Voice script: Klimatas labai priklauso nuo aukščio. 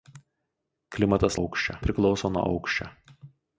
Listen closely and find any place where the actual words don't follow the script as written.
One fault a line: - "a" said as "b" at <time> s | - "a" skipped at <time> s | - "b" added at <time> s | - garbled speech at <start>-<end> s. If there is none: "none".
- "labai" said as "aukščio" at 1.4 s